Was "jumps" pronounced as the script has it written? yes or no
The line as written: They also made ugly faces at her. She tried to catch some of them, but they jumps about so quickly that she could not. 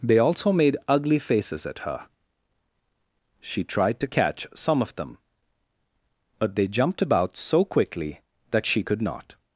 no